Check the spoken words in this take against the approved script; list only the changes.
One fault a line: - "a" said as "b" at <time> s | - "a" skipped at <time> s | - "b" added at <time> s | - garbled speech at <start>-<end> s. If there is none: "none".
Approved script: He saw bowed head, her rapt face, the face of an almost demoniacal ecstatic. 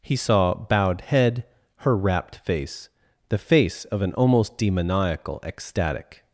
none